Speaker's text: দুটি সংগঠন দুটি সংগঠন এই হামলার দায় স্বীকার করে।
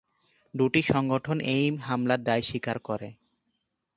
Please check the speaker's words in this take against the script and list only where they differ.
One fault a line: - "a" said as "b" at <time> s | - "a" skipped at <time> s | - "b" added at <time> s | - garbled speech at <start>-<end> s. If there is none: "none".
- "দুটি সংগঠন" skipped at 1.4 s